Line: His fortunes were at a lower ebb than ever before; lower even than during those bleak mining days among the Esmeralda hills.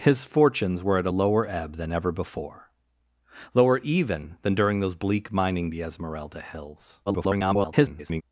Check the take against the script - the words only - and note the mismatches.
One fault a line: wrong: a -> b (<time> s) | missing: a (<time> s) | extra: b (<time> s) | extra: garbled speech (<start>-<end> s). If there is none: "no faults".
missing: days among (5.7 s)
extra: garbled speech (7.1-8.2 s)